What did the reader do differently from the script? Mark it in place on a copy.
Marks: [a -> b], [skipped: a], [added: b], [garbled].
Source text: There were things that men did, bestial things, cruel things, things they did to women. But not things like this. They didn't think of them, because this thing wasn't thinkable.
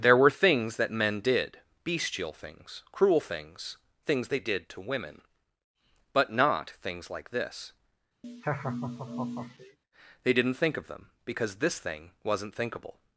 There were things that men did, bestial things, cruel things, things they did to women. But not things like this. They didn't think of them, because this thing wasn't thinkable.